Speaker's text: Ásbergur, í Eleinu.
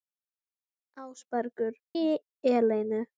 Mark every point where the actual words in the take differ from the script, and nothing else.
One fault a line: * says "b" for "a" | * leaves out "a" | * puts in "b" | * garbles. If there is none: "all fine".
all fine